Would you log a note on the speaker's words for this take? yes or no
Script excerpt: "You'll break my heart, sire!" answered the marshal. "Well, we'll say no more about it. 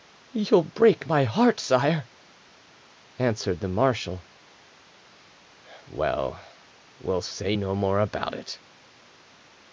no